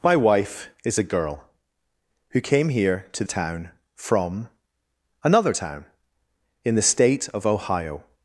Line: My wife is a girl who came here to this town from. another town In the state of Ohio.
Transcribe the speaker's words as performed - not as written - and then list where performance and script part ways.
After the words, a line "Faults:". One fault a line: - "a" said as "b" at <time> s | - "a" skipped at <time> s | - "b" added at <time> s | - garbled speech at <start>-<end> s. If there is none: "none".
My wife is a girl who came here to town from. another town In the state of Ohio.
Faults:
- "this" skipped at 3.2 s